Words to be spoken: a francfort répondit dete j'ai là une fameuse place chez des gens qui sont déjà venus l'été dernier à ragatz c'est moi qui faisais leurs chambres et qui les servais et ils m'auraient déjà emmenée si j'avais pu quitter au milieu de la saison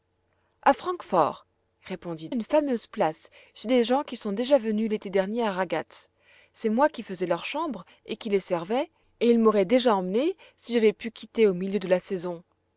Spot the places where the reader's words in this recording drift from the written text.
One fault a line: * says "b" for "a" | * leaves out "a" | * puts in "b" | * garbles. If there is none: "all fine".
* leaves out "dete j'ai là"